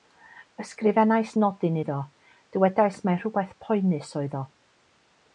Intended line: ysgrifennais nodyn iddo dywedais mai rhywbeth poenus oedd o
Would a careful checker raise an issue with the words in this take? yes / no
no